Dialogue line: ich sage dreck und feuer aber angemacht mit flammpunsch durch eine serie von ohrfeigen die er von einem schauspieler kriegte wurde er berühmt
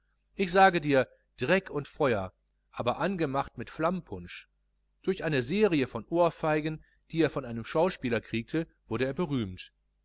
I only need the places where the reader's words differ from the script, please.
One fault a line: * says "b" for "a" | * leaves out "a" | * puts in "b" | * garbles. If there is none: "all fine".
* puts in "dir"